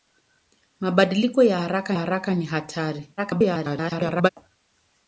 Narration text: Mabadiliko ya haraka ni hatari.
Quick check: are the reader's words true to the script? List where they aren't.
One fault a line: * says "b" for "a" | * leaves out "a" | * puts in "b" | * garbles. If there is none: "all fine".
* puts in "haraka"
* garbles